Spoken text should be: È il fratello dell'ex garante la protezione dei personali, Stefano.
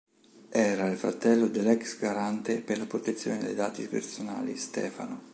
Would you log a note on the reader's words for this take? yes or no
yes